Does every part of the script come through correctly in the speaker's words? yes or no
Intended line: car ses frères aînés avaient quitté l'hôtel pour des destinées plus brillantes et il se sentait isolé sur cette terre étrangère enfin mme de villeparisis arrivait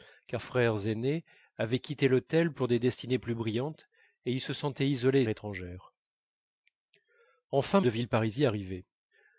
no